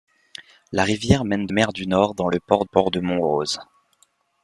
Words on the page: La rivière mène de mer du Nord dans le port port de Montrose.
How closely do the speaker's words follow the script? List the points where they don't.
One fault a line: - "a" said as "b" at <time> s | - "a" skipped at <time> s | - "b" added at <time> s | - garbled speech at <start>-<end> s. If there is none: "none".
none